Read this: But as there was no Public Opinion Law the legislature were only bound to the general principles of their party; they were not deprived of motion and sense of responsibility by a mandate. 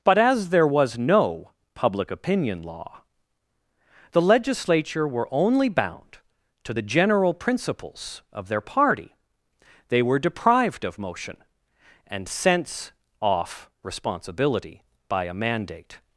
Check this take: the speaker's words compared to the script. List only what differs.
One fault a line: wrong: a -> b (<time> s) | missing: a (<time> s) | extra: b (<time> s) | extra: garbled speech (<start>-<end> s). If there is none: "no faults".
missing: not (10.2 s)
wrong: of -> off (13.2 s)